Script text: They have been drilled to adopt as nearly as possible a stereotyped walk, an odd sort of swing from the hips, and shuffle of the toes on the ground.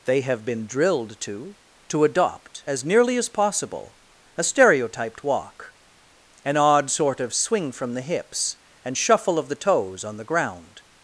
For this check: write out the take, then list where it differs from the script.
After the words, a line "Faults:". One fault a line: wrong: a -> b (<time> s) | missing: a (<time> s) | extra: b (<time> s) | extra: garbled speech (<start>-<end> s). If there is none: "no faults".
They have been drilled to to adopt as nearly as possible a stereotyped walk, an odd sort of swing from the hips, and shuffle of the toes on the ground.
Faults:
extra: to (1.9 s)